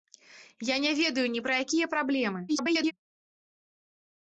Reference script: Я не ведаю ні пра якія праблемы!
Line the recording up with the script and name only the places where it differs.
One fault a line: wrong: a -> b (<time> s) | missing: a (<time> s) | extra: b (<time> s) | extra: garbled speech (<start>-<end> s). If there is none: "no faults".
extra: garbled speech (2.5-2.9 s)